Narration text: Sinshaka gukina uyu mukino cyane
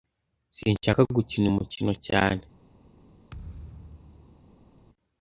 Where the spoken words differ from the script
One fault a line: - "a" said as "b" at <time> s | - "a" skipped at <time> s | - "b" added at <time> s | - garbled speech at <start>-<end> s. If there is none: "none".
none